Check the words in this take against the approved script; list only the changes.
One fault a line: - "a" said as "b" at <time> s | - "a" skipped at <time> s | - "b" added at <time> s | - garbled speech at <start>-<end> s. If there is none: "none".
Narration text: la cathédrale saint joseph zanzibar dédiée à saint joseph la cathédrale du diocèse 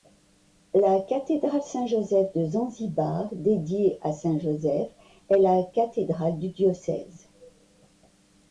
- "de" added at 2.3 s
- "est" added at 5.3 s